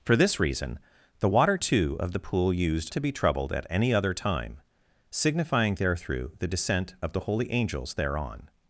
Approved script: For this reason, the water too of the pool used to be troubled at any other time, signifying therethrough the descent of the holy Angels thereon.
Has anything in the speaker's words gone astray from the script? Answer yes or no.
no